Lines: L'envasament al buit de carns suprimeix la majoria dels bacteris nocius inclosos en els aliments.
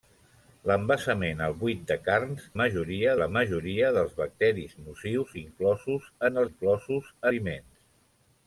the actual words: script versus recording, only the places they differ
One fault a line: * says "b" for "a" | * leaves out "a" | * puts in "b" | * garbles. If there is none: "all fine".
* says "majoria" for "suprimeix"
* says "inclosos" for "els"